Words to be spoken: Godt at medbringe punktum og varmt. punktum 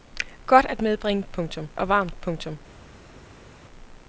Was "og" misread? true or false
false